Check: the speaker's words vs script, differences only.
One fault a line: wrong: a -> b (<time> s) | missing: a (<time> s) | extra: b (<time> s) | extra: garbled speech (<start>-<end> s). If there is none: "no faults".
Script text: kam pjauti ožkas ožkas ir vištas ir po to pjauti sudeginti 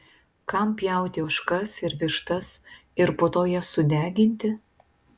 missing: ožkas (1.8 s)
wrong: pjauti -> jas (3.5 s)